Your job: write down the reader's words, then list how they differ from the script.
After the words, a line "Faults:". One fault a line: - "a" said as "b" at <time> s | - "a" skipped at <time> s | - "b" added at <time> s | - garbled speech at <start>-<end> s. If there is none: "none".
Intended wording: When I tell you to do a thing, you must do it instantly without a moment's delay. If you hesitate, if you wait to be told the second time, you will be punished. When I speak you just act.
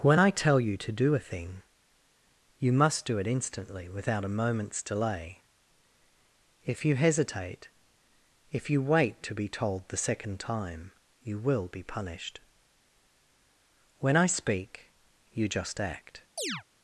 When I tell you to do a thing, you must do it instantly without a moment's delay. If you hesitate, if you wait to be told the second time, you will be punished. When I speak you just act.
Faults:
none